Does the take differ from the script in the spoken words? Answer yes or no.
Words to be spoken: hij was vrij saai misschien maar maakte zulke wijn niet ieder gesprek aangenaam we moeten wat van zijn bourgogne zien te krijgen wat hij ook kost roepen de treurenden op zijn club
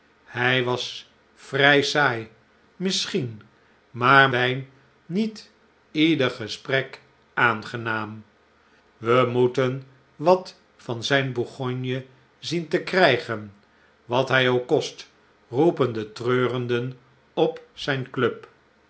yes